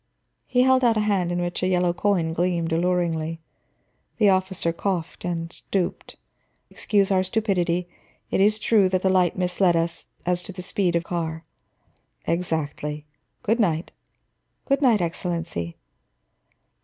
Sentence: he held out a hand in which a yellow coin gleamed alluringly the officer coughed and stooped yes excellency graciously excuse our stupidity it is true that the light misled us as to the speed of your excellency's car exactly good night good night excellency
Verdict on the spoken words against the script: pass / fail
fail